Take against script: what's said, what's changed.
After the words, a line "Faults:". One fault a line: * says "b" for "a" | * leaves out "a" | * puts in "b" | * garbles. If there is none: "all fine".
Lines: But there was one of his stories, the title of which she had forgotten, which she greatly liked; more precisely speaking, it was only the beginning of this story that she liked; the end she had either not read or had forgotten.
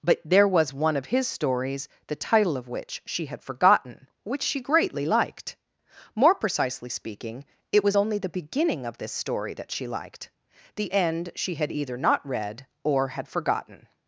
But there was one of his stories, the title of which she had forgotten, which she greatly liked; more precisely speaking, it was only the beginning of this story that she liked; the end she had either not read or had forgotten.
Faults:
all fine